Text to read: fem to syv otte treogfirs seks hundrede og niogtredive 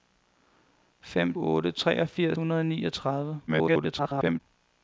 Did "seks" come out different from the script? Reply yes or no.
yes